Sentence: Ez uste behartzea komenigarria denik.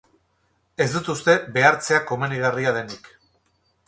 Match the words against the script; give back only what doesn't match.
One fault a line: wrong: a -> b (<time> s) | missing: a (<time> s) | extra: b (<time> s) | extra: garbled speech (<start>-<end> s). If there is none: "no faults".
extra: dut (0.9 s)